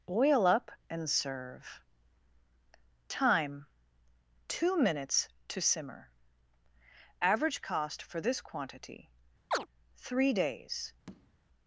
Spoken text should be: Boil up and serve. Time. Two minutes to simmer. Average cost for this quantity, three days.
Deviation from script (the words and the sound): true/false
true